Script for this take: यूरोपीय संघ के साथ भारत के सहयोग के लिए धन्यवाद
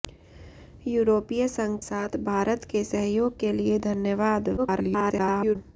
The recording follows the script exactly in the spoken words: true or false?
false